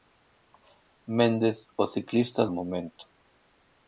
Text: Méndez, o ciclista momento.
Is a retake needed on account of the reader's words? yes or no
no